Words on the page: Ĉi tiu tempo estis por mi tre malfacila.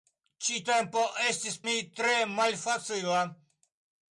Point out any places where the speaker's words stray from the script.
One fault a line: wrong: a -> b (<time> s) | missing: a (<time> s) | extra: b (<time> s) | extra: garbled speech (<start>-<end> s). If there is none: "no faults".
missing: tiu (0.6 s)
missing: por (1.6 s)